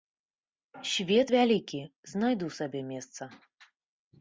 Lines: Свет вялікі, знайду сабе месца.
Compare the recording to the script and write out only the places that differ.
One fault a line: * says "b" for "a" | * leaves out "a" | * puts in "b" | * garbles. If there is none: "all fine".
all fine